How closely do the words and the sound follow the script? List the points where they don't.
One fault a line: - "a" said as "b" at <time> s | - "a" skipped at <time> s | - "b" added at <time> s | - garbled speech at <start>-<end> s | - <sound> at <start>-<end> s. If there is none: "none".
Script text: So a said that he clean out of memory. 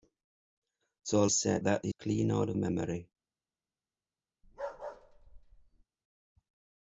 - bark at 4.4-5.8 s